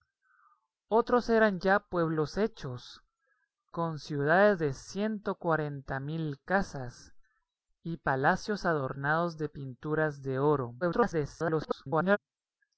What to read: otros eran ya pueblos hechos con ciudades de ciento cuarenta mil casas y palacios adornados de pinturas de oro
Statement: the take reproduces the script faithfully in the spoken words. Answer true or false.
false